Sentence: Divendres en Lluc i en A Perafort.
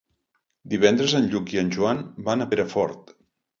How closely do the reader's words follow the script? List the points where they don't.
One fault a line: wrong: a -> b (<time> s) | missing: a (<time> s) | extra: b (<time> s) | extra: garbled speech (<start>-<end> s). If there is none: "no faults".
extra: Joan van (1.8 s)